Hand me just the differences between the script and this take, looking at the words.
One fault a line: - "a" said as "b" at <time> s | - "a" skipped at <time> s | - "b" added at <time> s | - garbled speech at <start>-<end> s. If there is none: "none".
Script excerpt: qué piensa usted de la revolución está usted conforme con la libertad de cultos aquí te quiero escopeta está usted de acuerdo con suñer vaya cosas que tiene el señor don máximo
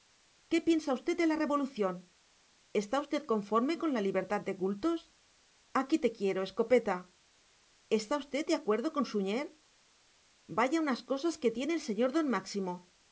- "unas" added at 10.9 s